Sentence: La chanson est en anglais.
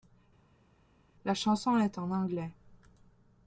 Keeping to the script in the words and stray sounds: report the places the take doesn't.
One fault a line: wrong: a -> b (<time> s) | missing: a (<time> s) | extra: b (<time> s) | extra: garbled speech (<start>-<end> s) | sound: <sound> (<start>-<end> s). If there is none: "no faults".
no faults